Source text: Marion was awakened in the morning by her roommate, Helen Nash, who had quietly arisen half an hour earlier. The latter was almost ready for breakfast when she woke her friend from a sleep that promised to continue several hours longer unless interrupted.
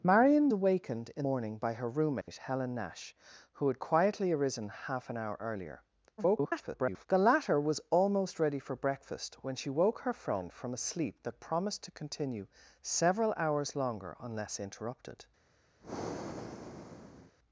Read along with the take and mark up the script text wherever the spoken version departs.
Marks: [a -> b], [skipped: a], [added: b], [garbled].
Marion [skipped: was] awakened in [skipped: the] morning by her roommate, Helen Nash, who had quietly arisen half an hour earlier. [garbled] The latter was almost ready for breakfast when she woke her friend from a sleep that promised to continue several hours longer unless interrupted.